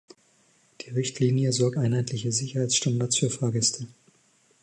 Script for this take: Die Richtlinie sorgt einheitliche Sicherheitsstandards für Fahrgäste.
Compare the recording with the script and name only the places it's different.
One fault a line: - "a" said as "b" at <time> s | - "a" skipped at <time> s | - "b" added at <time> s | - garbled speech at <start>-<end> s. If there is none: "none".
none